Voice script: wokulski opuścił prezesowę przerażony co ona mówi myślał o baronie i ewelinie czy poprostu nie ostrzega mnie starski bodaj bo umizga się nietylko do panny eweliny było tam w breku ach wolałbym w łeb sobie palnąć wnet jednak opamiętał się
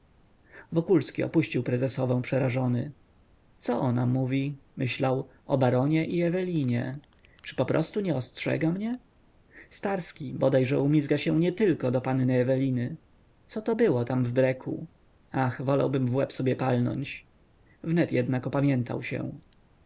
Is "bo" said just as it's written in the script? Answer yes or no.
no